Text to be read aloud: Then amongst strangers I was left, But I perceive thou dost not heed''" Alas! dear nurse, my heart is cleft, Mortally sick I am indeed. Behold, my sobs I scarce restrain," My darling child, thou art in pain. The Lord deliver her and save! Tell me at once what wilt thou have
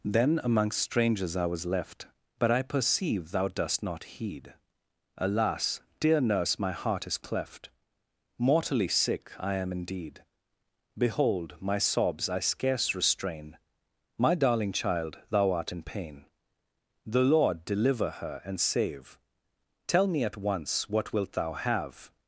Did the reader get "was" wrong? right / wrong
right